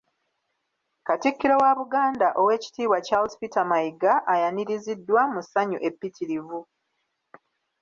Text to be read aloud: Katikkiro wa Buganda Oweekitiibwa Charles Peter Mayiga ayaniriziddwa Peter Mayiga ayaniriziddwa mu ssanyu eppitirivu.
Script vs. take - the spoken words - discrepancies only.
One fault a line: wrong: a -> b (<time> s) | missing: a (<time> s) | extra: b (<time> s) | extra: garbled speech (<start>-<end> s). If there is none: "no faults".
missing: Peter Mayiga ayaniriziddwa (5.2 s)